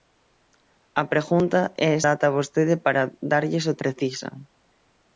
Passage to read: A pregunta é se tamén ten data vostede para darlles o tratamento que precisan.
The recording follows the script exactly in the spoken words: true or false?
false